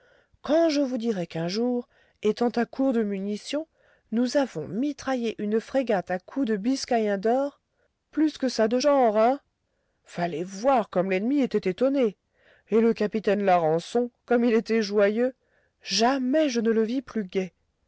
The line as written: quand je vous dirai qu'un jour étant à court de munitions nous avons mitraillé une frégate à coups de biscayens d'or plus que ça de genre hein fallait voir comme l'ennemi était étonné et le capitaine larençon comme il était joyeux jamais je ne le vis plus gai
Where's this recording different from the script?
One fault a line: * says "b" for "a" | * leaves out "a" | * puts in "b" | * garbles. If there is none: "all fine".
all fine